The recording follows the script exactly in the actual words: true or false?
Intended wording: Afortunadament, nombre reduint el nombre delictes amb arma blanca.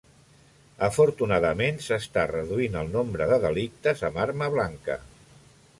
false